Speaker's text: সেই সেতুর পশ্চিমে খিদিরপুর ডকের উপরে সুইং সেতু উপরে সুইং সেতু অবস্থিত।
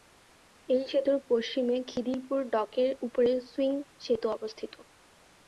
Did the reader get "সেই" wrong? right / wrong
wrong